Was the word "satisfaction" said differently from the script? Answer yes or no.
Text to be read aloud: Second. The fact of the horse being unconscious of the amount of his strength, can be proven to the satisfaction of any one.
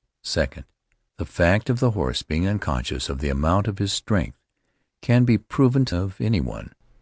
yes